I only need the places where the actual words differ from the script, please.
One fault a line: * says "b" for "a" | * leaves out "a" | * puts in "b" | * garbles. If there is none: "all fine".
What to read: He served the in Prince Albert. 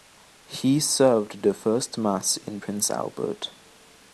* puts in "first mass"